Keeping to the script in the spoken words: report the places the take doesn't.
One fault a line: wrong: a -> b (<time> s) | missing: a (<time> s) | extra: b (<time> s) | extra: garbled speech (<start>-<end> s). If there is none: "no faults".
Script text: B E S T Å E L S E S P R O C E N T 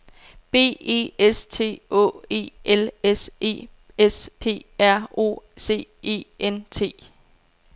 no faults